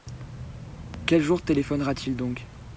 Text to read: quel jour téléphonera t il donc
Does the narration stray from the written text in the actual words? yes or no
no